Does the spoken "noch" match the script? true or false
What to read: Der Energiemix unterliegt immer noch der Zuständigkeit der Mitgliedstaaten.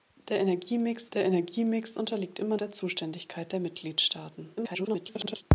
false